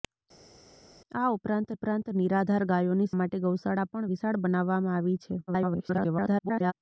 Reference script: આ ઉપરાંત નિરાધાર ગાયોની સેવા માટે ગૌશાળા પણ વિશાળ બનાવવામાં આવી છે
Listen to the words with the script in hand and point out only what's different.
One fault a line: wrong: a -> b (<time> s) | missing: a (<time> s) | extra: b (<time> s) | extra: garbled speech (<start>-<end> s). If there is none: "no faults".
extra: ઉપરાંત (1.7 s)
missing: સેવા (3.1 s)
extra: garbled speech (5.5-6.7 s)